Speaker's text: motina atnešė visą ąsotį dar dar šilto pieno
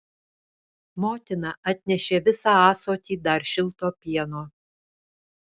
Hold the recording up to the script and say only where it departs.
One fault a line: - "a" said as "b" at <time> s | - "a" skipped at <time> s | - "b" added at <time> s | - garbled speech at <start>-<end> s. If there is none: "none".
- "dar" skipped at 3.5 s